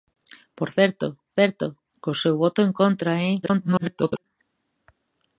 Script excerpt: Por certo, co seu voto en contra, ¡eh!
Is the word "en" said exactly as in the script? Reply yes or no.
yes